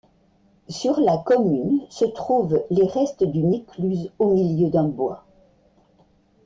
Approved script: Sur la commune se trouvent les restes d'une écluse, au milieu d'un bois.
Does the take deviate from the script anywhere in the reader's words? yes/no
no